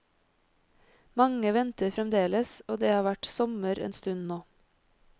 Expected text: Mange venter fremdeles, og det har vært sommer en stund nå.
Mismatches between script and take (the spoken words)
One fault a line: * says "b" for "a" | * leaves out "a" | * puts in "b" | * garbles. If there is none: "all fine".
all fine